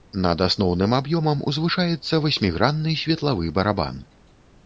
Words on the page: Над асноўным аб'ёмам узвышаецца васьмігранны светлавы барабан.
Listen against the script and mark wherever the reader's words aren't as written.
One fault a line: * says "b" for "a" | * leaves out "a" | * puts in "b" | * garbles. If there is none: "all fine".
all fine